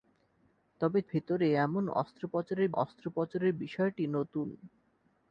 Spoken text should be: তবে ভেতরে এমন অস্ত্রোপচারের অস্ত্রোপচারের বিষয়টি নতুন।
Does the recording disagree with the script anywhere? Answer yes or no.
no